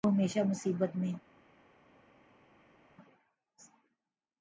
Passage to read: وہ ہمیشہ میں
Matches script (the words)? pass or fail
fail